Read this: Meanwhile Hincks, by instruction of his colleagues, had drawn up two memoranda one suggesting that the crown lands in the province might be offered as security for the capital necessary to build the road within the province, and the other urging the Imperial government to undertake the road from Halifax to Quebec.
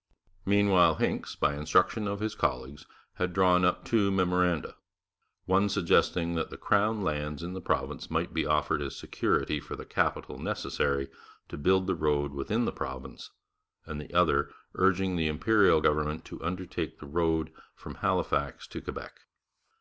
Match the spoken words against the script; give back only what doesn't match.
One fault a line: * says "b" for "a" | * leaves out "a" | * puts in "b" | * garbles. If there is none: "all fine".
all fine